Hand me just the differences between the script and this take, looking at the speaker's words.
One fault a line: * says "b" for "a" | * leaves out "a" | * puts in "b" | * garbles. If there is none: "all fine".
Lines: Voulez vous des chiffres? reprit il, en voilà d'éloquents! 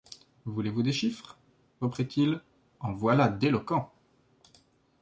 all fine